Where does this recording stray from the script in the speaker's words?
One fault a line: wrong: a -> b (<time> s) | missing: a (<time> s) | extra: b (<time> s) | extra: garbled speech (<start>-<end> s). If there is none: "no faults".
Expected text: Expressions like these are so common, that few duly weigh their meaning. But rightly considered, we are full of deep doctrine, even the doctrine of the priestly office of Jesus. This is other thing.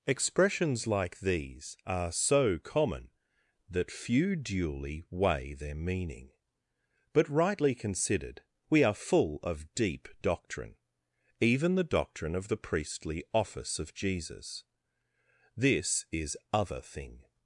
no faults